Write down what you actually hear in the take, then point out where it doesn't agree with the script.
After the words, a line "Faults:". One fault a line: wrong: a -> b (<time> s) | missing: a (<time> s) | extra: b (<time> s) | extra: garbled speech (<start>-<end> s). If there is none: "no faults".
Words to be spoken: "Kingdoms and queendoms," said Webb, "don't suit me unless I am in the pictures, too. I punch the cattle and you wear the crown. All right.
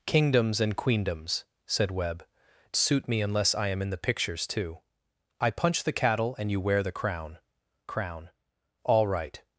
"Kingdoms and queendoms," said Webb, "suit me unless I am in the pictures, too. I punch the cattle and you wear the crown crown. All right.
Faults:
missing: don't (2.2 s)
extra: crown (7.9 s)